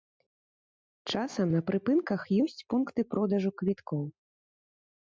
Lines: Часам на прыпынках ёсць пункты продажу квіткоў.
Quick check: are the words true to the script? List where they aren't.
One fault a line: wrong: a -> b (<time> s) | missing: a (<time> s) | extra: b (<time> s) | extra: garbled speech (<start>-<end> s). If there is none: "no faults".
no faults